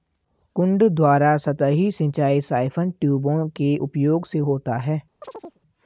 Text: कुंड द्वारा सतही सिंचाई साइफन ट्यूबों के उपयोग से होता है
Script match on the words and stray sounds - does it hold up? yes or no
no